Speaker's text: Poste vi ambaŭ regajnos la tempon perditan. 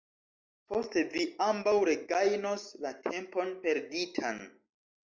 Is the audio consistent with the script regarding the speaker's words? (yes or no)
yes